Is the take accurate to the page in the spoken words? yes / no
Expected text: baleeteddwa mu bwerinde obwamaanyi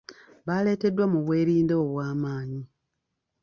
yes